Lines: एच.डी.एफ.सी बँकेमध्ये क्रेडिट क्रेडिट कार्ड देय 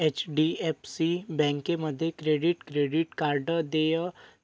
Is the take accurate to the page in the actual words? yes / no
yes